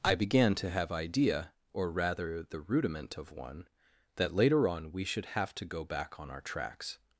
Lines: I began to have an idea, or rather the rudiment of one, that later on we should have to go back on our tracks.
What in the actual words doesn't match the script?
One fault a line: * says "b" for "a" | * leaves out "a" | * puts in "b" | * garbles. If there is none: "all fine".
* leaves out "an"